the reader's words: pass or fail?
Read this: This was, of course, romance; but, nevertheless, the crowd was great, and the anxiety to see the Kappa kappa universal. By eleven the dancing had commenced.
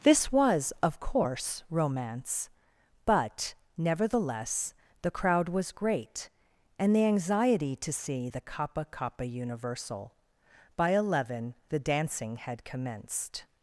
pass